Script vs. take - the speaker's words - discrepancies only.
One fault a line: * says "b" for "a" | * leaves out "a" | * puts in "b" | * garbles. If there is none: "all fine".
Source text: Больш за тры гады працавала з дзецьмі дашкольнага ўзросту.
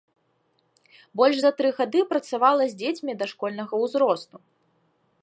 all fine